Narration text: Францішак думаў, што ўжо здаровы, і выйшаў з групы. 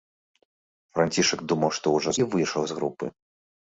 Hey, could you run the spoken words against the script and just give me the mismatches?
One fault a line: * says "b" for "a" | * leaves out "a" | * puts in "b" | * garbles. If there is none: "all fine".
* leaves out "здаровы"